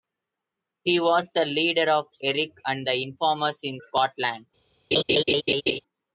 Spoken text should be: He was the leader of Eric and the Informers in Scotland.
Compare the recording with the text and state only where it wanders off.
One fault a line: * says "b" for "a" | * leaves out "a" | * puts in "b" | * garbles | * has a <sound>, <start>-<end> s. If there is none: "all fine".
* has a laugh, 4.9-5.8 s